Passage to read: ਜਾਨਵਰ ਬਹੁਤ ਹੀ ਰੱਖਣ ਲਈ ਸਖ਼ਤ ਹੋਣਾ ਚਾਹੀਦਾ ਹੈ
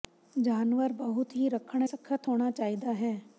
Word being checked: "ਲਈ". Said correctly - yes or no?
no